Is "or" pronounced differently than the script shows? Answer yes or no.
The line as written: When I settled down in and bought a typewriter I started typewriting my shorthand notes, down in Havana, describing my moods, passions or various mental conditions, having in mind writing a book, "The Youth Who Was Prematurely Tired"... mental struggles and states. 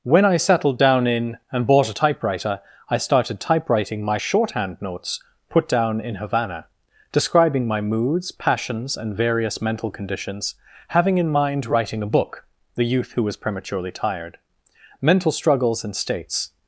yes